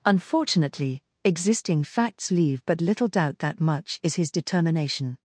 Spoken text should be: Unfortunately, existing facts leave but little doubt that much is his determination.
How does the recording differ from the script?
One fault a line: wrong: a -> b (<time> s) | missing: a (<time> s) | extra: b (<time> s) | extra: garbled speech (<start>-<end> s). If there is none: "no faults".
no faults